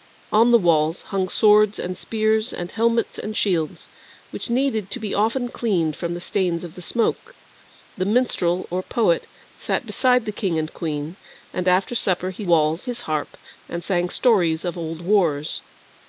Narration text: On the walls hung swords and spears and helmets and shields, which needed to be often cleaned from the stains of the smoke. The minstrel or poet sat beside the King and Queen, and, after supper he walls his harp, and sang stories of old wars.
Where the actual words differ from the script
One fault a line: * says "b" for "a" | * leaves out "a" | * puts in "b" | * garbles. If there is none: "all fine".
all fine